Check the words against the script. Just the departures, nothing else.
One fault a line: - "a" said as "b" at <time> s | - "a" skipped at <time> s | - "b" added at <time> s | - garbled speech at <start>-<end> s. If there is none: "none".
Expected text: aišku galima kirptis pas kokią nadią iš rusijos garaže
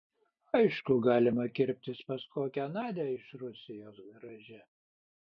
none